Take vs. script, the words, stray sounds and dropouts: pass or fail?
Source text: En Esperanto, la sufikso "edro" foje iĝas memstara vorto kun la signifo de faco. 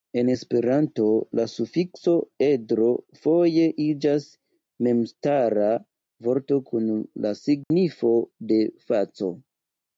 fail